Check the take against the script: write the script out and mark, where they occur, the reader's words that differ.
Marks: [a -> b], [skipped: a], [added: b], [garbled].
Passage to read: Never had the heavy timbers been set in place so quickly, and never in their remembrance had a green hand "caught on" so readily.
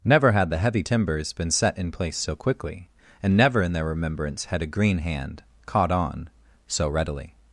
Never had the heavy timbers been set in place so quickly, and never in their remembrance had a green hand "caught on" so readily.